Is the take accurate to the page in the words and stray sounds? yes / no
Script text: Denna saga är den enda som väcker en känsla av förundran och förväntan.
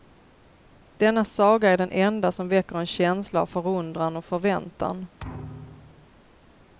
no